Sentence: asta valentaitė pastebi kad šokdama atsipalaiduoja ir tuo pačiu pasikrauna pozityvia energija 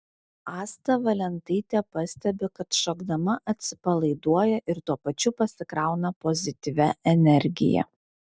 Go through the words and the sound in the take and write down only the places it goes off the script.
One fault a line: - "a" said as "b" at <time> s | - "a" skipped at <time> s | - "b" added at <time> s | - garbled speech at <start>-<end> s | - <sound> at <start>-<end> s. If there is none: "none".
none